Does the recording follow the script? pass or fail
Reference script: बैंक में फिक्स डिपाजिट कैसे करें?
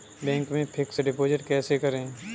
pass